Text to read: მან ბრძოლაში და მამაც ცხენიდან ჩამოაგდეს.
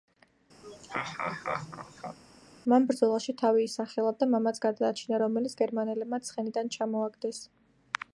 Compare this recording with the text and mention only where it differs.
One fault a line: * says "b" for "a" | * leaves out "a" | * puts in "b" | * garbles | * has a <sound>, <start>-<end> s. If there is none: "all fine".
* has a laugh, 0.6-2.2 s
* puts in "თავი ისახელა"
* puts in "გადაარჩინა რომელიც გერმანელებმა"